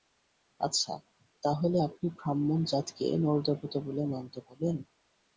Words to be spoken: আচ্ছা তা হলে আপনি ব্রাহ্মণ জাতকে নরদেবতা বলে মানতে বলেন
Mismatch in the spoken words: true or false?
false